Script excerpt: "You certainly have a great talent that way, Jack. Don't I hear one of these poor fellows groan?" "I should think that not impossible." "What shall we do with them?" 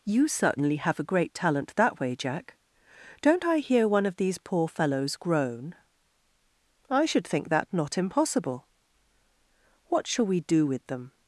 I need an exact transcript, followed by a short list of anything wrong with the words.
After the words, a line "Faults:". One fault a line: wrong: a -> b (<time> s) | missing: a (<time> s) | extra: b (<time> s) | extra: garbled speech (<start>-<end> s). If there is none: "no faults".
"You certainly have a great talent that way, Jack. Don't I hear one of these poor fellows groan?" "I should think that not impossible." "What shall we do with them?"
Faults:
no faults